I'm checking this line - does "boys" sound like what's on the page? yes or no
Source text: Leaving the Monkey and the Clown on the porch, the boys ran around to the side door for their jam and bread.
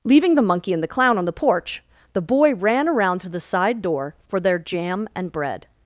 no